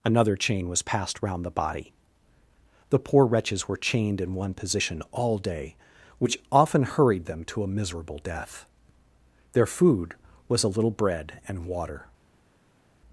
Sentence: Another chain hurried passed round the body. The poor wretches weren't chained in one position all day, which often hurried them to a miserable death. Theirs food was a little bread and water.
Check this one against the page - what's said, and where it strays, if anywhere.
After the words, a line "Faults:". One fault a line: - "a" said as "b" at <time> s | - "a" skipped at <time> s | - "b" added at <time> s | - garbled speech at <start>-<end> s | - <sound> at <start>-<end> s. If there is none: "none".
Another chain was passed round the body. The poor wretches were chained in one position all day, which often hurried them to a miserable death. Their food was a little bread and water.
Faults:
- "hurried" said as "was" at 0.7 s
- "weren't" said as "were" at 3.7 s
- "Theirs" said as "Their" at 9.5 s